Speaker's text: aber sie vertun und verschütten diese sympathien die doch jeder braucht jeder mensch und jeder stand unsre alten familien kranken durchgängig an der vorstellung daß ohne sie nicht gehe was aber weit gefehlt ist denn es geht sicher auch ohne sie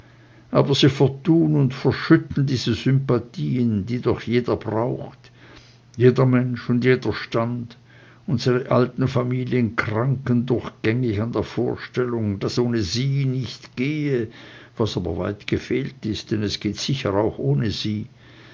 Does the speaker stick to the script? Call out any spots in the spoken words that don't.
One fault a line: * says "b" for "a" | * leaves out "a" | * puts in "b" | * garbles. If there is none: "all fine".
all fine